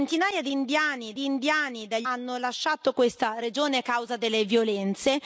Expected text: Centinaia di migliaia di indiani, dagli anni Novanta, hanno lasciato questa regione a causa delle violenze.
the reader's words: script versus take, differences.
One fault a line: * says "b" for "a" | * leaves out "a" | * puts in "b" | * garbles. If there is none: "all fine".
* says "indiani" for "migliaia"
* leaves out "anni Novanta"